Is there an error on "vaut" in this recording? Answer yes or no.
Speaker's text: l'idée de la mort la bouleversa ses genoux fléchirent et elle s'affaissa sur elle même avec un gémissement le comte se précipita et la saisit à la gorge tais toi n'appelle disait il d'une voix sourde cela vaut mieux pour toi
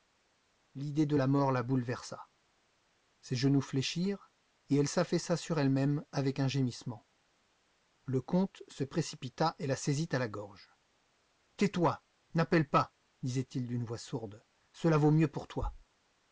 no